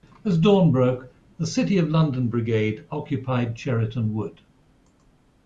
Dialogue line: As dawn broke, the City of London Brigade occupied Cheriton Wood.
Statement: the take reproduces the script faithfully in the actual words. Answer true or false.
true